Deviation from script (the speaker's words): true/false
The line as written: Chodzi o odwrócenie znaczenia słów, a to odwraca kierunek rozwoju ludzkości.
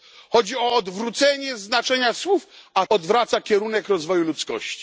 true